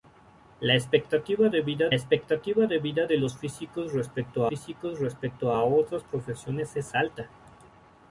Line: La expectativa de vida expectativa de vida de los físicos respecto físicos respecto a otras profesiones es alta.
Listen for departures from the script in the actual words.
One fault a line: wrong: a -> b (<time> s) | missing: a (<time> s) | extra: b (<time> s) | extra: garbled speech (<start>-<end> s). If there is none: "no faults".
no faults